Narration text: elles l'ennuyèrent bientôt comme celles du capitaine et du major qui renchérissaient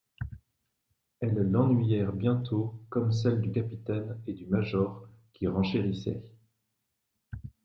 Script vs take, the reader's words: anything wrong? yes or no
no